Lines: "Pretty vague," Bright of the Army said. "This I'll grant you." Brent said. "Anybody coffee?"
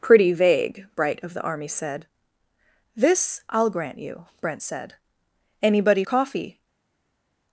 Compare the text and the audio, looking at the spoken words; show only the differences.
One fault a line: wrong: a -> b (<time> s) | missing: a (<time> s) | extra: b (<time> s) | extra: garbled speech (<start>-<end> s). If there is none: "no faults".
no faults